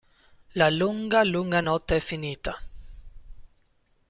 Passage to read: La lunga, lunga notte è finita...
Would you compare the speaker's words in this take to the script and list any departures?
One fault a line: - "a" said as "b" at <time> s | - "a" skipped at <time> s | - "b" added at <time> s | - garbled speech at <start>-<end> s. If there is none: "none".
none